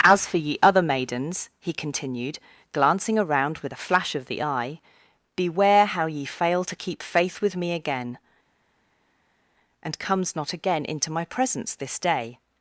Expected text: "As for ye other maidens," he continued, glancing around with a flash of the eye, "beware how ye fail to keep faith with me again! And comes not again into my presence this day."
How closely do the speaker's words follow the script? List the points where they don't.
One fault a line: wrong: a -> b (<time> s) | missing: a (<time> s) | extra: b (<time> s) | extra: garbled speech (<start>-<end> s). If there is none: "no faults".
no faults